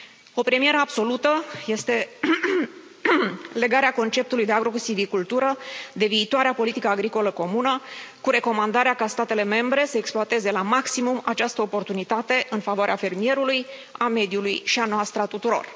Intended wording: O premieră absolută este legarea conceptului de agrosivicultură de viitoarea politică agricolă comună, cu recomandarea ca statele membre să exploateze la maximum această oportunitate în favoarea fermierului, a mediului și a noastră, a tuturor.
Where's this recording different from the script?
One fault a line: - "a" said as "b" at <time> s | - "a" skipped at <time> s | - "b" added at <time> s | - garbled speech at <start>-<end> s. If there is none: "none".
none